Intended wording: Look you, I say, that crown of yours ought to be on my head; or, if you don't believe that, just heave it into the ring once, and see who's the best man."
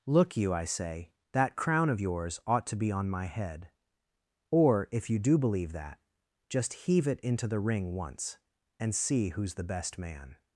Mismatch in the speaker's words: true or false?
true